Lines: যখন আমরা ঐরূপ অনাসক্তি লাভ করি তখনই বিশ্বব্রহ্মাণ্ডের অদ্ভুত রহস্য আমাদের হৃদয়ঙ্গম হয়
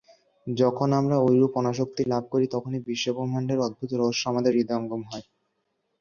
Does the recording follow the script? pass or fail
pass